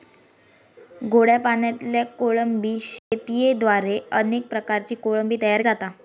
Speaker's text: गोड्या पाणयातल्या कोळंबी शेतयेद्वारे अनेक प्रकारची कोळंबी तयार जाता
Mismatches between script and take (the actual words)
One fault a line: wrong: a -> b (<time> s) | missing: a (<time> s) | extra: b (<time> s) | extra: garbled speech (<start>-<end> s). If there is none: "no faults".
no faults